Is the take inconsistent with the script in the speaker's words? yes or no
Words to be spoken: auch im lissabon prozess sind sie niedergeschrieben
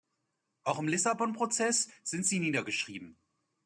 no